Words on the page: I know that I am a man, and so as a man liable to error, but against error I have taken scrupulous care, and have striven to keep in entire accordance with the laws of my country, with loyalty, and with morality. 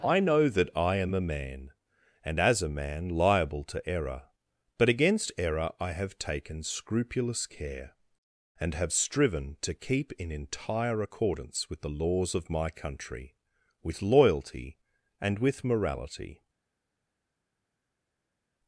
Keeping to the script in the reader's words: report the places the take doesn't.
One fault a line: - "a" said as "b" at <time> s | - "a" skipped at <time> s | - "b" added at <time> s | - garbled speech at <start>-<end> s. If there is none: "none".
- "so" skipped at 2.4 s